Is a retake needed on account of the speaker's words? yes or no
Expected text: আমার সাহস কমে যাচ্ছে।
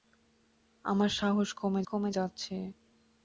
yes